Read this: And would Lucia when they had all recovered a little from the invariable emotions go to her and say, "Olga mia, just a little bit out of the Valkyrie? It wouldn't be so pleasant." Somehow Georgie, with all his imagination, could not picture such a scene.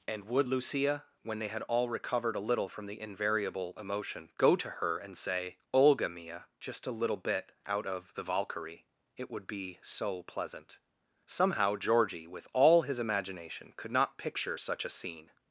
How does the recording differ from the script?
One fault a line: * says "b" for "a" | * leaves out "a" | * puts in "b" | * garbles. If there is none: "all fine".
* says "emotion" for "emotions"
* says "would" for "wouldn't"